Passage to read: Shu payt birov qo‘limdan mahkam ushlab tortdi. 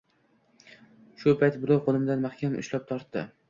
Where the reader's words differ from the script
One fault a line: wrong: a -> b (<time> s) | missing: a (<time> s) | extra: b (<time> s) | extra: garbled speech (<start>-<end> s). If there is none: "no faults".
no faults